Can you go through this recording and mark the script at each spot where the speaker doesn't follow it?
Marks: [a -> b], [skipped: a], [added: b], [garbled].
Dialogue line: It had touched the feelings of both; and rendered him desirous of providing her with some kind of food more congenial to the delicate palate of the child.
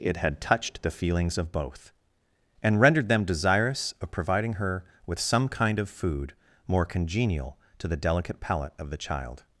It had touched the feelings of both; and rendered [him -> them] desirous of providing her with some kind of food more congenial to the delicate palate of the child.